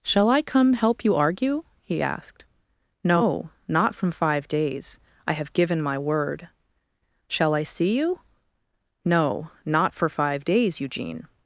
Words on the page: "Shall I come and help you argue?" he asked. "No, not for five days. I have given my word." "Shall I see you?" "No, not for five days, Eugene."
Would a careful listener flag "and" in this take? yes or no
yes